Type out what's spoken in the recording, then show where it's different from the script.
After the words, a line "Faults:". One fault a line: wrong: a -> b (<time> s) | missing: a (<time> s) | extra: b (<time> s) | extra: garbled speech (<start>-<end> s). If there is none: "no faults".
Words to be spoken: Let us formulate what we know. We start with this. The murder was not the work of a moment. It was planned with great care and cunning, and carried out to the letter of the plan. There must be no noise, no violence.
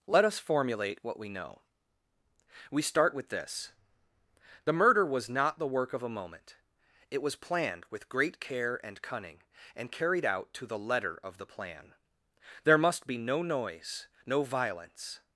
Let us formulate what we know. We start with this. The murder was not the work of a moment. It was planned with great care and cunning, and carried out to the letter of the plan. There must be no noise, no violence.
Faults:
no faults